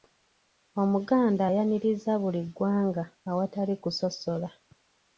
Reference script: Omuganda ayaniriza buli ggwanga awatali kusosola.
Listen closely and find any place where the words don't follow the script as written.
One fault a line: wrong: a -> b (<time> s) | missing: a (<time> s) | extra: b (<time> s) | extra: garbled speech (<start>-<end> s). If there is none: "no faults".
no faults